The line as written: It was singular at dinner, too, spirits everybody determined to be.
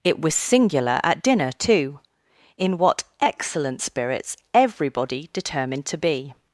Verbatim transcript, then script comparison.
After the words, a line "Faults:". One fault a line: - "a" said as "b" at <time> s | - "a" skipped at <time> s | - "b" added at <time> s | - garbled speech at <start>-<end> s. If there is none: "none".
It was singular at dinner, too, in what excellent spirits everybody determined to be.
Faults:
- "in what excellent" added at 2.6 s